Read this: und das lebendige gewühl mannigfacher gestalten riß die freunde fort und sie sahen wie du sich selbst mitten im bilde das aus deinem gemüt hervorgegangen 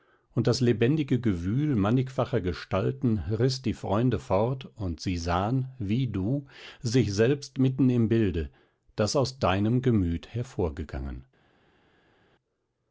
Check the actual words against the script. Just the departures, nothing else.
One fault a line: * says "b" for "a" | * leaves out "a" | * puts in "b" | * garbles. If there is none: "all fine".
all fine